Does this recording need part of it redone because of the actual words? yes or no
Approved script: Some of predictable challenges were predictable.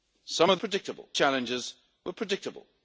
no